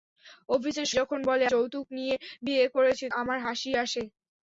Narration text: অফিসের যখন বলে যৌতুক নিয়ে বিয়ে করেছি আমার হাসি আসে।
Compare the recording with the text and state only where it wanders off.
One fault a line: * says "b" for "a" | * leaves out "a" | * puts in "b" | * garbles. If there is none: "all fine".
all fine